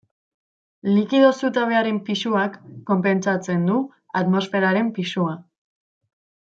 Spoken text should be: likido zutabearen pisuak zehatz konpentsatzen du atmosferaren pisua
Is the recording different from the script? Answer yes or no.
yes